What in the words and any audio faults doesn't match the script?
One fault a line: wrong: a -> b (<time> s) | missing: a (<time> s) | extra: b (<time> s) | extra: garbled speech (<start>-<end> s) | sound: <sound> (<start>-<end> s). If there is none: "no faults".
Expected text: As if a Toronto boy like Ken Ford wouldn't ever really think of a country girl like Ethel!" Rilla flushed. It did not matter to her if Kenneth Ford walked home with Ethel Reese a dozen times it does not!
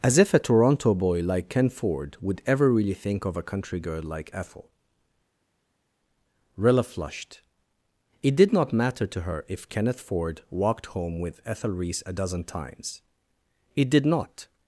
wrong: wouldn't -> would (2.2 s)
wrong: does -> did (13.9 s)